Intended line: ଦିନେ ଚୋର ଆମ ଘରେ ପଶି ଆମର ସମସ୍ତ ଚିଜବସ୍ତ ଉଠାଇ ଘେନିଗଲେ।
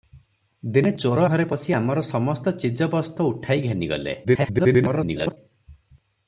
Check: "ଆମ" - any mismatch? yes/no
yes